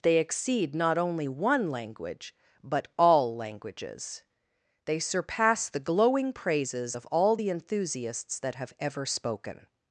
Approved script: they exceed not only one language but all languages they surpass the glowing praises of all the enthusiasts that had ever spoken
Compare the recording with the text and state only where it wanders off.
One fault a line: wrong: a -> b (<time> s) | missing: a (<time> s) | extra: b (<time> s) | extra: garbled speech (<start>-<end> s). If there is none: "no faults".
wrong: had -> have (8.6 s)